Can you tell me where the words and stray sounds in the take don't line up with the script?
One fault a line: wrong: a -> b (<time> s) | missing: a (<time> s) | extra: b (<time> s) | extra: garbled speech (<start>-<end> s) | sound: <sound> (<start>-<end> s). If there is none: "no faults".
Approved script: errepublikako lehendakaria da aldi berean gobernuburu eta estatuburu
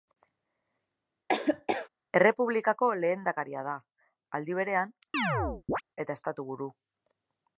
sound: laugh (1.3-1.9 s)
missing: gobernuburu (5.0 s)
sound: chirp (5.1-5.8 s)